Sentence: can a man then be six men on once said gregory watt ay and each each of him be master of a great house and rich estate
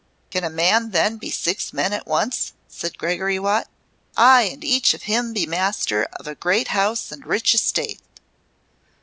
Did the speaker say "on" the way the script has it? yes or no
no